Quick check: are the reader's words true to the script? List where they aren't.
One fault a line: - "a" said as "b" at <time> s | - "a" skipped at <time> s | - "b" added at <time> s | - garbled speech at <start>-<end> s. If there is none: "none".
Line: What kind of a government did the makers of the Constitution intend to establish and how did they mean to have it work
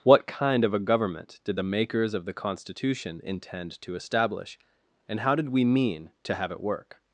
- "they" said as "we" at 5.5 s